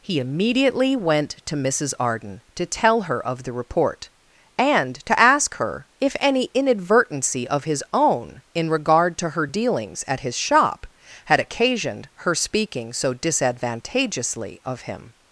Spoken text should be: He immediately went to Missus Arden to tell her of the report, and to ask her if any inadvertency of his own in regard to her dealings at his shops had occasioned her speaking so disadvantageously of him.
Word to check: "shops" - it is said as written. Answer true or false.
false